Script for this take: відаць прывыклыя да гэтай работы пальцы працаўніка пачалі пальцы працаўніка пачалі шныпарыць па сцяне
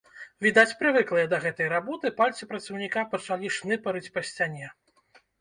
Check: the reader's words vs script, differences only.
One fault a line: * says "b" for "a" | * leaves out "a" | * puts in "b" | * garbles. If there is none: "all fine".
* leaves out "пальцы працаўніка пачалі"